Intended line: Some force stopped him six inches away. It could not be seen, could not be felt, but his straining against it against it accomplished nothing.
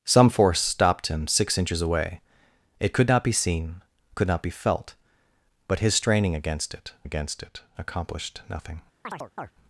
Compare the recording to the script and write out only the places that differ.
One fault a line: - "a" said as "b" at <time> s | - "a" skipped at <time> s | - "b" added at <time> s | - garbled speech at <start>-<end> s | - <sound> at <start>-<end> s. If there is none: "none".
- chirp at 9.0-9.5 s